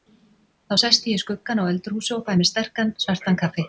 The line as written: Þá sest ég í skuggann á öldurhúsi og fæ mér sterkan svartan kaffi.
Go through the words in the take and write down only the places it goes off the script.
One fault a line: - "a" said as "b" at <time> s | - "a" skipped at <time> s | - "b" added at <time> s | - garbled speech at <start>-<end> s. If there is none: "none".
none